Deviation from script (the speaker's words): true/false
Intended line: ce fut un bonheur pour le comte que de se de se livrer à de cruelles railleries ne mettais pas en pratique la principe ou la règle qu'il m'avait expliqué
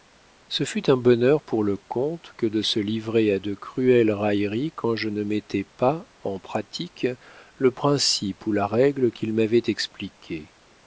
true